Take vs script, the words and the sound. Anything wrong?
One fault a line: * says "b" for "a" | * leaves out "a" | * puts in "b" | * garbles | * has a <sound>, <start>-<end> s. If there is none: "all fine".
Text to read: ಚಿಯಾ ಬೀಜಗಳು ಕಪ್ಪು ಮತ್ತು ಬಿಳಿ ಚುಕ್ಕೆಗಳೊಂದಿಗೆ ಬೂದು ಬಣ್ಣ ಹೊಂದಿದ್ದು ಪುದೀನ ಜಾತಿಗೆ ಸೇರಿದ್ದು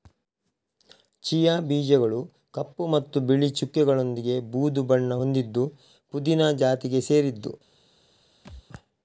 * has a thud, 8.4-8.6 s